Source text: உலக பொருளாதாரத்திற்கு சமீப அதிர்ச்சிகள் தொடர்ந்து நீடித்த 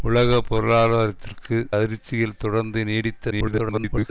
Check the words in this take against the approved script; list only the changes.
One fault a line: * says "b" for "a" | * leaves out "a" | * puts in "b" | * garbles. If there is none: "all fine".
* leaves out "சமீப"
* garbles